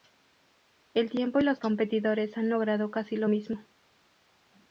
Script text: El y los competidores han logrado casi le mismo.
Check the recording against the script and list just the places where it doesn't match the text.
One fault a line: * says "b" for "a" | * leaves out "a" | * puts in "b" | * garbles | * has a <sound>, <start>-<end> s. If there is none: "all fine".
* puts in "tiempo"
* says "lo" for "le"